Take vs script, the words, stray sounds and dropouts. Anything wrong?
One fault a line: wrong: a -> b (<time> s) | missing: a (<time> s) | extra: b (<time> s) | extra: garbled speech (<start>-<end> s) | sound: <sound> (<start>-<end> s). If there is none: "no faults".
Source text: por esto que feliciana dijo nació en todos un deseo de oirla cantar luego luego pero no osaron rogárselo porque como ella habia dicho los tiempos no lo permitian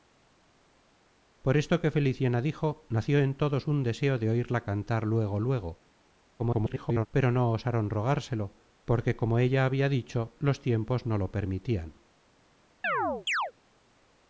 extra: garbled speech (6.4-7.1 s)
sound: chirp (12.8-13.5 s)